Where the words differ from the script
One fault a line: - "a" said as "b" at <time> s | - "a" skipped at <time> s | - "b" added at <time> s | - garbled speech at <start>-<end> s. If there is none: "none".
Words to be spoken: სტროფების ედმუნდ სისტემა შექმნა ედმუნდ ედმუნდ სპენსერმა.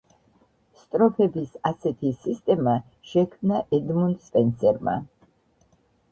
- "ედმუნდ" said as "ასეთი" at 1.7 s
- "ედმუნდ" skipped at 4.3 s